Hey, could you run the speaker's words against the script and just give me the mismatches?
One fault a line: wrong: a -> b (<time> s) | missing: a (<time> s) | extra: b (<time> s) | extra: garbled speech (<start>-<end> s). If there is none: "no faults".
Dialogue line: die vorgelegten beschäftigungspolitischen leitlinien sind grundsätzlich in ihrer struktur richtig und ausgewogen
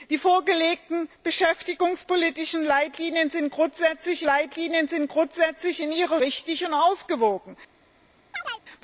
extra: leitlinien sind grundsätzlich (4.2 s)
missing: struktur (6.2 s)